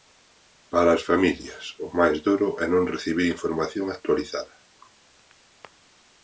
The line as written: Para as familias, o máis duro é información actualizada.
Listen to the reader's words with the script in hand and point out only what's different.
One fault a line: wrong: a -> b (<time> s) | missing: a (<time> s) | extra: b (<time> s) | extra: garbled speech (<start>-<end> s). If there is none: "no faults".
extra: non recibir (2.7 s)